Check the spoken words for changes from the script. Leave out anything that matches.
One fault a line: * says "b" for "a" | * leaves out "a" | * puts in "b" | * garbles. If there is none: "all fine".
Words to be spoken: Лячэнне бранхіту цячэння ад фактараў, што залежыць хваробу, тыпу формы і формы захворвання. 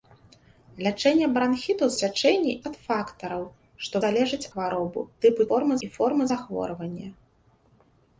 all fine